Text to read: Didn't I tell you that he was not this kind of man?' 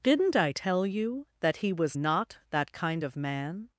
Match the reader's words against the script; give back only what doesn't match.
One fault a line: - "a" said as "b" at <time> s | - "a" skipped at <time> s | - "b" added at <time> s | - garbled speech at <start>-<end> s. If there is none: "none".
- "this" said as "that" at 2.5 s